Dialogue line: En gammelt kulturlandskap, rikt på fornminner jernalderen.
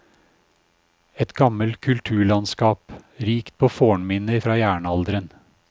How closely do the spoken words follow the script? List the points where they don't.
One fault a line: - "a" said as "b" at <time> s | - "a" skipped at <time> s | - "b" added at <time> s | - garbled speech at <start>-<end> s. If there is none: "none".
- "En" said as "Et" at 1.1 s
- "fra" added at 4.4 s